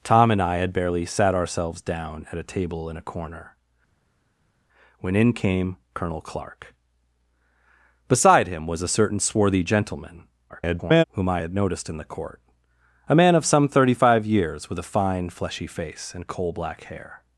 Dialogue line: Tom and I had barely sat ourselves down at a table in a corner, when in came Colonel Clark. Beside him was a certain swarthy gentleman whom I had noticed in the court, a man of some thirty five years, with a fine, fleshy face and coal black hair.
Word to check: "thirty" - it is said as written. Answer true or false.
true